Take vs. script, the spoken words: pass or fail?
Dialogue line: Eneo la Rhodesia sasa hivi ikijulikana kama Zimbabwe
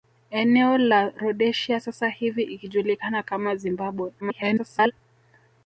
fail